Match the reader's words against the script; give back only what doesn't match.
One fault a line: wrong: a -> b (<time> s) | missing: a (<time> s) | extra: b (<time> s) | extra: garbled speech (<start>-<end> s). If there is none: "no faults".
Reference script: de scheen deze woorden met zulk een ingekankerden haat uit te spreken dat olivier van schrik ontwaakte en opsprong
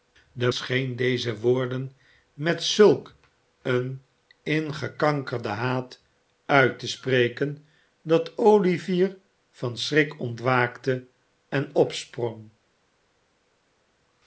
no faults